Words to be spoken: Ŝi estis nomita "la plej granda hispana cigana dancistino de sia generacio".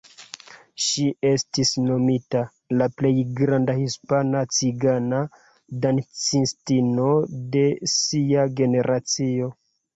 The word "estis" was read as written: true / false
true